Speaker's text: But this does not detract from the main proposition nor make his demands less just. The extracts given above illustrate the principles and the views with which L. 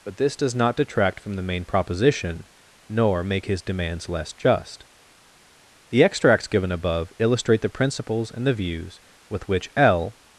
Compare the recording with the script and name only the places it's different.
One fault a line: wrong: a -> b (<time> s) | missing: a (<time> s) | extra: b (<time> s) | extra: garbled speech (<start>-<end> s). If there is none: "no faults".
no faults